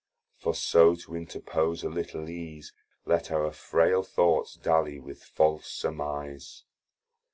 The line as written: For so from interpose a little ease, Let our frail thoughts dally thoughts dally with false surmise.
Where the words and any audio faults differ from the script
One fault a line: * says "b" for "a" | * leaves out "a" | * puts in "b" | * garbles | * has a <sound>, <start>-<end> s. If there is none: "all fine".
* says "to" for "from"
* leaves out "thoughts dally"